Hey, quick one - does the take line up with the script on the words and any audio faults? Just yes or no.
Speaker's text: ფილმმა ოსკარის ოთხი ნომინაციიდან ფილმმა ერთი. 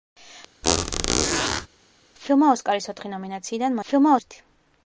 no